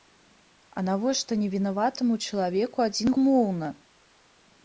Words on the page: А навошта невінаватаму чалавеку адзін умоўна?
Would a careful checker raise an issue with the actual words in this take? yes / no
no